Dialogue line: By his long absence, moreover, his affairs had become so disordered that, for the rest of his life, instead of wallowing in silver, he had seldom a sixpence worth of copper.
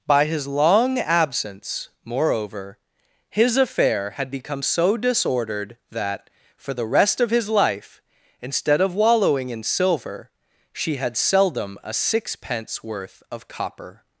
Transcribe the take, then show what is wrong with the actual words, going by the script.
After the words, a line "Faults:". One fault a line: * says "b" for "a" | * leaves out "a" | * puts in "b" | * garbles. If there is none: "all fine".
By his long absence, moreover, his affair had become so disordered that, for the rest of his life, instead of wallowing in silver, she had seldom a sixpence worth of copper.
Faults:
* says "affair" for "affairs"
* says "she" for "he"